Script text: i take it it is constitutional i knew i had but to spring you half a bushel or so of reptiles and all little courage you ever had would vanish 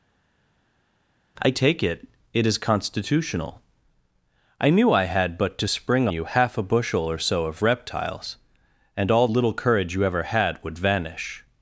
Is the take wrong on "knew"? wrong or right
right